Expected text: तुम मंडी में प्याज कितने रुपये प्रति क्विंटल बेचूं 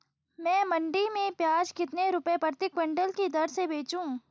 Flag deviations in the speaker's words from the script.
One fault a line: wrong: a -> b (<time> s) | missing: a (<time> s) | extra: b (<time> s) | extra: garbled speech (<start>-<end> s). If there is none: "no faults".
wrong: तुम -> मैं (0.4 s)
extra: की दर से (3.1 s)